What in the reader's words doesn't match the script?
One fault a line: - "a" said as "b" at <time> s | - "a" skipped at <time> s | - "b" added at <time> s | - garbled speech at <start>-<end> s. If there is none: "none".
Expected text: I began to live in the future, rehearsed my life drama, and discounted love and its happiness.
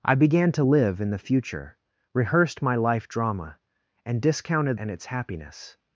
- "love" skipped at 4.8 s